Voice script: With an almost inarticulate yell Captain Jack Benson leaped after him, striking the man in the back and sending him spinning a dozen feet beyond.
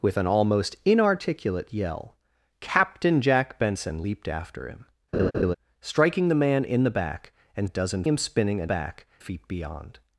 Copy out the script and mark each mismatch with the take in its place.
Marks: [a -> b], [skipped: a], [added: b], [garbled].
With an almost inarticulate yell Captain Jack Benson leaped after him, striking the man in the back and [sending -> dozen] him spinning a [dozen -> back] feet beyond.